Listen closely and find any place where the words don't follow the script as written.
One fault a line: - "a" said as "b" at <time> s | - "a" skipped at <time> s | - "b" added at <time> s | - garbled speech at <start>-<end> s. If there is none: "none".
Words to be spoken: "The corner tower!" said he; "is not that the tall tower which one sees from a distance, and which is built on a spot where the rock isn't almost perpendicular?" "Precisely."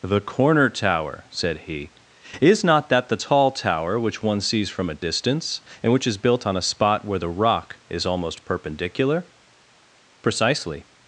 - "isn't" said as "is" at 7.9 s